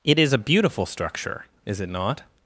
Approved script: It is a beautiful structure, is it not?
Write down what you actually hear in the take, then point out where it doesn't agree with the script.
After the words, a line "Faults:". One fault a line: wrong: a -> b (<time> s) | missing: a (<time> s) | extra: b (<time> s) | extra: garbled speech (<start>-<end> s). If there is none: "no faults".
It is a beautiful structure, is it not?
Faults:
no faults